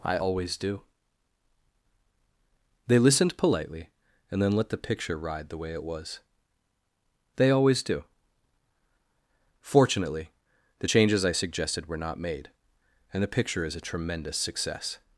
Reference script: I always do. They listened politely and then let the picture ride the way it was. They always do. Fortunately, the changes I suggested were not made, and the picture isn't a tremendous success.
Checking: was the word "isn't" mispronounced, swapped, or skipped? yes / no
yes